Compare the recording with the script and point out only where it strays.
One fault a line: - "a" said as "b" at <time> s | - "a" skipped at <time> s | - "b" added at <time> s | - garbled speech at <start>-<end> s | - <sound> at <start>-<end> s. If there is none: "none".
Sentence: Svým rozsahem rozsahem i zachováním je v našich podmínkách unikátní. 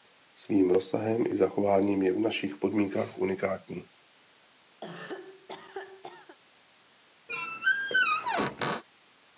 - "rozsahem" skipped at 1.2 s
- cough at 4.8-6.4 s
- squeak at 7.3-8.8 s